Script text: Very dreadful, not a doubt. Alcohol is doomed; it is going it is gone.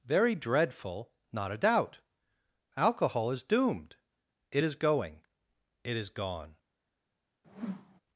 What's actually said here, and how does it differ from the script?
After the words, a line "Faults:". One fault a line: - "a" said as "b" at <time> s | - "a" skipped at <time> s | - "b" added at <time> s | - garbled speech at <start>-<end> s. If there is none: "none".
Very dreadful, not a doubt. Alcohol is doomed; it is going it is gone.
Faults:
none